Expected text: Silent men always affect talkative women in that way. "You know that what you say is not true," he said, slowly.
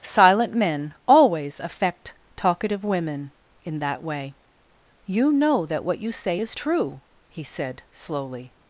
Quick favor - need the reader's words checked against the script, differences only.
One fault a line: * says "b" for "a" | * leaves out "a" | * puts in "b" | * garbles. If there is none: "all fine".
* leaves out "not"